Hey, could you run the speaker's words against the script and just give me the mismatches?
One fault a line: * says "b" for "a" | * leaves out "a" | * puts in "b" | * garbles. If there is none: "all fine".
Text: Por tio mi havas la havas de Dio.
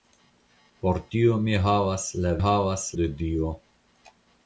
all fine